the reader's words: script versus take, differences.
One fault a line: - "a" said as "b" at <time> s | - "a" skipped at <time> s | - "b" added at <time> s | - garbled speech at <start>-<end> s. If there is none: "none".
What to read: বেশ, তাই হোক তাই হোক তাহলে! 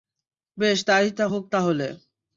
- "তাই হোক" skipped at 1.4 s